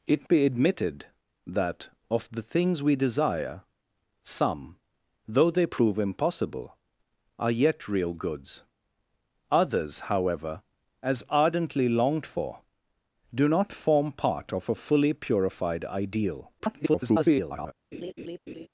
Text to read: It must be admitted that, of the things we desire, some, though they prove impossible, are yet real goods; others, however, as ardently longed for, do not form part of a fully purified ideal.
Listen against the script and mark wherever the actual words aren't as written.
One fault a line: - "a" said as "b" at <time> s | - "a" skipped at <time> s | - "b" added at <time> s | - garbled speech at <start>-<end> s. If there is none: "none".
- "must" skipped at 0.3 s
- garbled speech at 16.6-17.7 s